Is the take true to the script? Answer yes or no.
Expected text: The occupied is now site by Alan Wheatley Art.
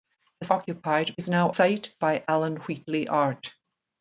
yes